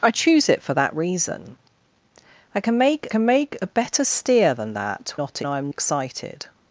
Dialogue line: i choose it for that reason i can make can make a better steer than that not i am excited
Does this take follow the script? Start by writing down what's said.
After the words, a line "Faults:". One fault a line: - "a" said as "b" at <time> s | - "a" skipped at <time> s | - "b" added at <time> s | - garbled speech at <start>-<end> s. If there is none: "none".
i choose it for that reason i can make can make a better steer than that not i am excited
Faults:
none